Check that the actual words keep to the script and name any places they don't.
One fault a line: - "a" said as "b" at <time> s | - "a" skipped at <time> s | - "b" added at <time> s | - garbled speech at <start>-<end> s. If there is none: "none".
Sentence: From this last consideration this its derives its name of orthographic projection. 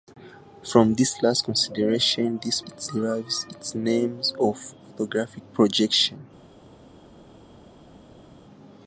none